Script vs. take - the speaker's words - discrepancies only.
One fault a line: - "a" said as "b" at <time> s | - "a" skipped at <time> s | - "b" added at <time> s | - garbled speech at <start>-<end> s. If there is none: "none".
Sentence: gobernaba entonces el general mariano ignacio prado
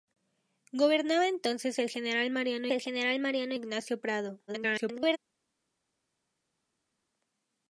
- "el general mariano" added at 2.7 s
- garbled speech at 4.5-5.2 s